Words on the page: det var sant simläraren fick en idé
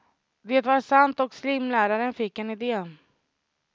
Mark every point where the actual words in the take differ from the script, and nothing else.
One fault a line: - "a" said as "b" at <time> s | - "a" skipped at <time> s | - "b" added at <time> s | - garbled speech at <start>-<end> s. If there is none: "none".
- "och" added at 1.2 s